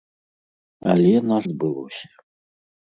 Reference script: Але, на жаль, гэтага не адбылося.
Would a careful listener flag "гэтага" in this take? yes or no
yes